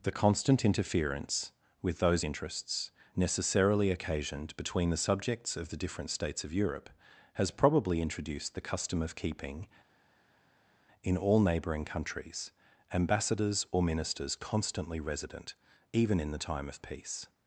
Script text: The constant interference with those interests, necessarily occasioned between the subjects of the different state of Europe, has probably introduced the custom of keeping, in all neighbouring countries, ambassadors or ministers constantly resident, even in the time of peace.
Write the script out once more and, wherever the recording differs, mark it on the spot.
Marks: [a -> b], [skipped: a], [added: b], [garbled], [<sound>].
The constant interference with those interests, necessarily occasioned between the subjects of the different [state -> states] of Europe, has probably introduced the custom of keeping, in all neighbouring countries, ambassadors or ministers constantly resident, even in the time of peace.